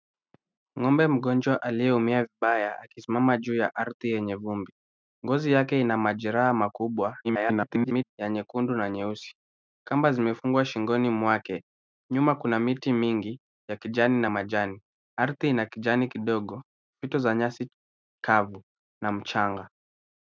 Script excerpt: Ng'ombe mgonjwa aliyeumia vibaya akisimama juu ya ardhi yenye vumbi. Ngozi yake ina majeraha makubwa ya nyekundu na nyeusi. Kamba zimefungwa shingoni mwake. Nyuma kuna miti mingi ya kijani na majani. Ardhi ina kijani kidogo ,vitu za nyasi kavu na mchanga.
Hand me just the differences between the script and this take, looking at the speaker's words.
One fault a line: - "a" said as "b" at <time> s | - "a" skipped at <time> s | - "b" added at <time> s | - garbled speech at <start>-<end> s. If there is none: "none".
- garbled speech at 7.2-8.1 s